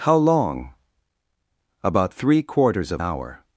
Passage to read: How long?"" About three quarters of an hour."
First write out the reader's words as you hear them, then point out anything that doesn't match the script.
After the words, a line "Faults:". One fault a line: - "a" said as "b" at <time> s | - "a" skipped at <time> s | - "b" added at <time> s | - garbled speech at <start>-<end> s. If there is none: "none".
How long?"" About three quarters of hour."
Faults:
- "an" skipped at 3.0 s